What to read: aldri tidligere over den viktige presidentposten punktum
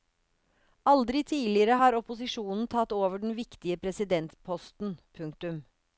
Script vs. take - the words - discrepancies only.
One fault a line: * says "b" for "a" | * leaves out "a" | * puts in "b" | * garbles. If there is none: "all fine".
* puts in "har opposisjonen tatt"